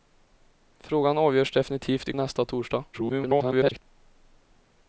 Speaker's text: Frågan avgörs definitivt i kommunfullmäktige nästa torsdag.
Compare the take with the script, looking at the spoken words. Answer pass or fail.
fail